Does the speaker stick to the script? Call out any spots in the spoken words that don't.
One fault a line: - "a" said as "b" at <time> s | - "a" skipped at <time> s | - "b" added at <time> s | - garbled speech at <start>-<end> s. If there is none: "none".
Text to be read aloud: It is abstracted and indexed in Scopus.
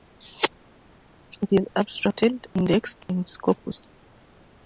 - "and" skipped at 2.5 s